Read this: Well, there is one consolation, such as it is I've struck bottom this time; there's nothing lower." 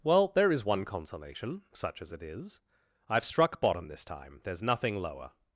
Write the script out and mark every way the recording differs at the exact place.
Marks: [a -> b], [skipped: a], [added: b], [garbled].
Well, there is one consolation, such as it is I've struck bottom this time; there's nothing lower."